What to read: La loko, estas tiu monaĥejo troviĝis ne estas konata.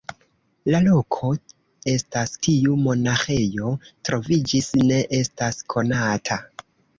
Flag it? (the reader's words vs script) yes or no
no